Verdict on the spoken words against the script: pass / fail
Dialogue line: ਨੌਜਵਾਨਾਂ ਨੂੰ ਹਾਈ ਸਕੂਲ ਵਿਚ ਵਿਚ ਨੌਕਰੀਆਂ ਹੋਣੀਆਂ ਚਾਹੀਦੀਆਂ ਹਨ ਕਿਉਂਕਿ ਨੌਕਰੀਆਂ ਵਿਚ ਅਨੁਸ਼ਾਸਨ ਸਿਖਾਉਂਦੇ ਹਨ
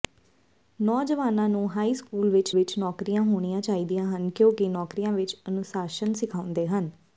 pass